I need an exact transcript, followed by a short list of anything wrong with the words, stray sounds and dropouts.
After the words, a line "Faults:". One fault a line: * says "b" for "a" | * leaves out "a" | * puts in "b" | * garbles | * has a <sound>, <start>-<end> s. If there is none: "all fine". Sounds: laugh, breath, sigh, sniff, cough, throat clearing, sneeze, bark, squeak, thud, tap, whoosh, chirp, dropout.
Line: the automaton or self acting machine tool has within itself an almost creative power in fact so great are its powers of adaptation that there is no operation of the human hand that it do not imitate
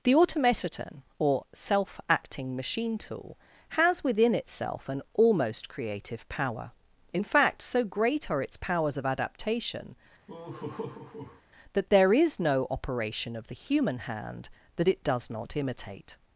the automaton or self acting machine tool has within itself an almost creative power in fact so great are its powers of adaptation that there is no operation of the human hand that it does not imitate
Faults:
* has a laugh, 10.3-11.4 s
* says "does" for "do"